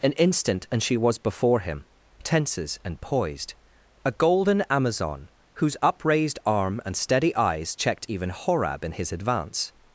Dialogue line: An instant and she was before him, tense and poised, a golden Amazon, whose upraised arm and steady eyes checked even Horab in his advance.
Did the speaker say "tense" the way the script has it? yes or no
no